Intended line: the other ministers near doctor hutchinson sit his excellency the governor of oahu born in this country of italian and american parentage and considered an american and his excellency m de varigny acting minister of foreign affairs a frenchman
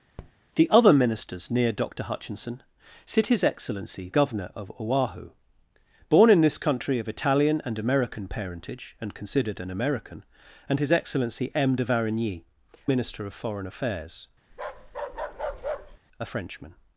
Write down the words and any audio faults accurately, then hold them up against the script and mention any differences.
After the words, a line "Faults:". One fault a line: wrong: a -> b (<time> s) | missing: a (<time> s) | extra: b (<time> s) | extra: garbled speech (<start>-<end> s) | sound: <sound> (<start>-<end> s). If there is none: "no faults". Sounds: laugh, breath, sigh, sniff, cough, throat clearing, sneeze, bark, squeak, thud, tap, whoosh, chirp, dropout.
the other ministers near doctor hutchinson sit his excellency governor of oahu born in this country of italian and american parentage and considered an american and his excellency m de varigny minister of foreign affairs a frenchman
Faults:
sound: tap (0.2-0.3 s)
missing: the (4.1 s)
missing: acting (12.4 s)
sound: bark (14.5-16.0 s)